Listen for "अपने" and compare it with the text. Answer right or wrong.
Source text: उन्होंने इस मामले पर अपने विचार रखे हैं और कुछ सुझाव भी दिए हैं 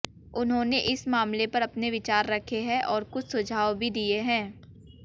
right